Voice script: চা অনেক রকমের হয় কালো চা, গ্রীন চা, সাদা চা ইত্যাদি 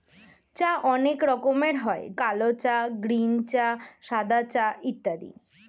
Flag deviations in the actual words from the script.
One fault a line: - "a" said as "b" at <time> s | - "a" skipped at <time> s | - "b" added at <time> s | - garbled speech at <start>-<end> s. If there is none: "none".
none